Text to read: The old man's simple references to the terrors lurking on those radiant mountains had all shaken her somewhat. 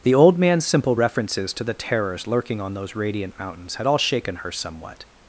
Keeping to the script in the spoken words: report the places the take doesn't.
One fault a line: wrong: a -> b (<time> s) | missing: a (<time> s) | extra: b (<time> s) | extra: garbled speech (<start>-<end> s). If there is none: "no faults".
no faults